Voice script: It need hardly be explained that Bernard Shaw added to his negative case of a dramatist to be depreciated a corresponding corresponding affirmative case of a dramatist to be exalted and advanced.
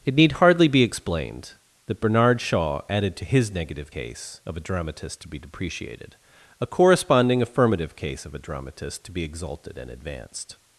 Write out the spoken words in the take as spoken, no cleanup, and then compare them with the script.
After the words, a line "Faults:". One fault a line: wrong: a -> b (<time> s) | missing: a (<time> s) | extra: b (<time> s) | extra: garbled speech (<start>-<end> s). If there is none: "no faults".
It need hardly be explained that Bernard Shaw added to his negative case of a dramatist to be depreciated a corresponding affirmative case of a dramatist to be exalted and advanced.
Faults:
missing: corresponding (7.4 s)